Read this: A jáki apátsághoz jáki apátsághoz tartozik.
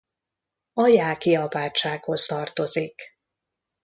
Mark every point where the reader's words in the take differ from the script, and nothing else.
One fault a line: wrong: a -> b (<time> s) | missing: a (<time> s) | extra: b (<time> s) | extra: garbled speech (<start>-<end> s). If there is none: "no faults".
missing: jáki apátsághoz (2.3 s)